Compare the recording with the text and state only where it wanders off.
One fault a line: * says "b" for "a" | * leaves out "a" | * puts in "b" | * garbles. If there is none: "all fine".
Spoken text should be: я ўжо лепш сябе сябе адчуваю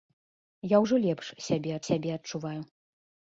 all fine